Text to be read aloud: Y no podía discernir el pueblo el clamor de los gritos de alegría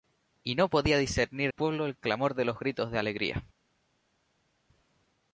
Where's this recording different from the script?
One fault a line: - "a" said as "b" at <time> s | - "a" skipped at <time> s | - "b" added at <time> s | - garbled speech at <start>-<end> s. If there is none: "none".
- "el" skipped at 1.5 s